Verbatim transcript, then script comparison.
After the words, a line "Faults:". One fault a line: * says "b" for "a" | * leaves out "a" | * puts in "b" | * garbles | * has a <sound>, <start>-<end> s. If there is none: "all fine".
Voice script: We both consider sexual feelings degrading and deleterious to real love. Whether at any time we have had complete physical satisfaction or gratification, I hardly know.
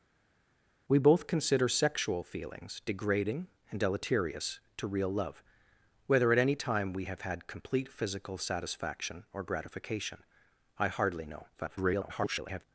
We both consider sexual feelings degrading and deleterious to real love. Whether at any time we have had complete physical satisfaction or gratification, I hardly know. [garbled]
Faults:
* garbles